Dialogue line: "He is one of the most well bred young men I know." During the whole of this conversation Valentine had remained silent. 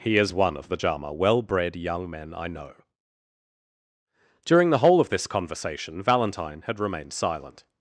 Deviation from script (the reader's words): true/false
true